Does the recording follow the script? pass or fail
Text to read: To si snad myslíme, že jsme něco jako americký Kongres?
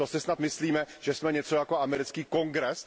pass